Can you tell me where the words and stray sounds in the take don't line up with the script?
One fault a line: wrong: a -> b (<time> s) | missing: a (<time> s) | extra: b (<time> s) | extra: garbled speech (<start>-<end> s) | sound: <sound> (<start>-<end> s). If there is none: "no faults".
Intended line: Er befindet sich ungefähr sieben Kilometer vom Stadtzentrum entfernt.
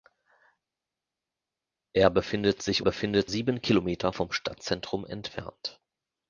wrong: ungefähr -> befindet (2.8 s)